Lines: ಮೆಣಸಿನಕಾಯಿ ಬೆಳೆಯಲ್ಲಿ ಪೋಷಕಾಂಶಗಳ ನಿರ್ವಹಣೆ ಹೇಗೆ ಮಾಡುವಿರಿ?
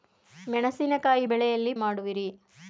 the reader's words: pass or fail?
fail